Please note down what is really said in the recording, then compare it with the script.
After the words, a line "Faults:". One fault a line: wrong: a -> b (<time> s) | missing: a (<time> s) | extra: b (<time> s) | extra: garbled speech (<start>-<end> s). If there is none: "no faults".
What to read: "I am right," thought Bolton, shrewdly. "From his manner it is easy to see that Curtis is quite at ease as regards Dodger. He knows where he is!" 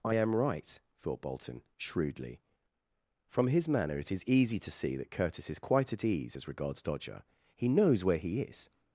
"I am right," thought Bolton, shrewdly. "From his manner it is easy to see that Curtis is quite at ease as regards Dodger. He knows where he is!"
Faults:
no faults